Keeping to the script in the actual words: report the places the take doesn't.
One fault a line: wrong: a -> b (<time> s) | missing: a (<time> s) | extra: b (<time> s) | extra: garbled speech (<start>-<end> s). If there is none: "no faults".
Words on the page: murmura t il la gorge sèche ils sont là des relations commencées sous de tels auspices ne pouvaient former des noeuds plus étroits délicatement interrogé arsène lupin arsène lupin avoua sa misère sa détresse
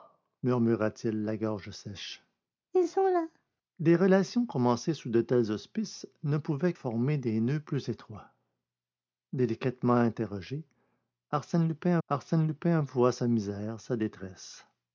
no faults